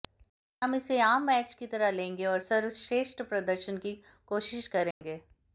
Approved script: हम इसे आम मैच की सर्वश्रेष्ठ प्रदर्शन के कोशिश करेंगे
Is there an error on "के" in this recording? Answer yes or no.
yes